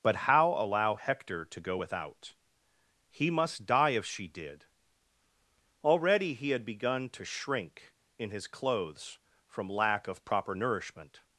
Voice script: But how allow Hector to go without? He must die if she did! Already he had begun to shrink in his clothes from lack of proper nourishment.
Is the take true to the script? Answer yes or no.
yes